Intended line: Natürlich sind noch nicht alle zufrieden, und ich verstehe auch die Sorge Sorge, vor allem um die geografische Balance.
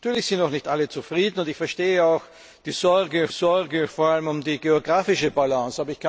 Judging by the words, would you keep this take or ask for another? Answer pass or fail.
pass